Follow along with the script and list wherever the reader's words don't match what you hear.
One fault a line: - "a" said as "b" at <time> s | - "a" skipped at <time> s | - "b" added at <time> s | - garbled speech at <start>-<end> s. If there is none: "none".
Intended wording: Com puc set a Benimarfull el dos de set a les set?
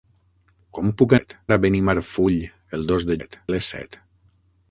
none